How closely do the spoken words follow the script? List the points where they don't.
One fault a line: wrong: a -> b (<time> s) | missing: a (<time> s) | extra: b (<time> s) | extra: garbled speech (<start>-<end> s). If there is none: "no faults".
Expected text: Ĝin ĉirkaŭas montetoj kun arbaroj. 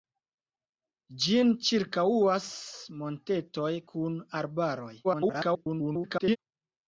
extra: garbled speech (5.0-6.4 s)